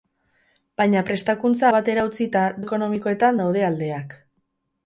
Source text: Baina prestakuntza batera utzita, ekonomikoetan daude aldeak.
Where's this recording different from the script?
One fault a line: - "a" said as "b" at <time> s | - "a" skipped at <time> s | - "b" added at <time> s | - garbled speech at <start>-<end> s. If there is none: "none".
none